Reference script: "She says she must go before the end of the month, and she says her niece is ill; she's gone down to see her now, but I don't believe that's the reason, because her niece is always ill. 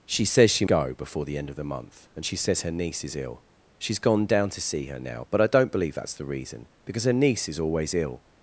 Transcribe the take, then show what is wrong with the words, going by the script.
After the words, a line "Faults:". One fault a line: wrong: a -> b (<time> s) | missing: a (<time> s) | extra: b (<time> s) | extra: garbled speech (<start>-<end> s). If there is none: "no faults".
"She says she go before the end of the month, and she says her niece is ill; she's gone down to see her now, but I don't believe that's the reason, because her niece is always ill.
Faults:
missing: must (0.7 s)